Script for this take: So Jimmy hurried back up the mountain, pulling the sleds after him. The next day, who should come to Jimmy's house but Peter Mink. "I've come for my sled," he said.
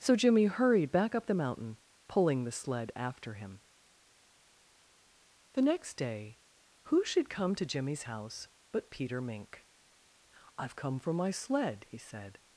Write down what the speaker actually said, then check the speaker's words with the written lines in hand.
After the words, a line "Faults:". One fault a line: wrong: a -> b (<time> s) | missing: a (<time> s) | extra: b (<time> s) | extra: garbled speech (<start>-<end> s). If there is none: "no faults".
So Jimmy hurried back up the mountain, pulling the sled after him. The next day, who should come to Jimmy's house but Peter Mink. "I've come for my sled," he said.
Faults:
wrong: sleds -> sled (2.5 s)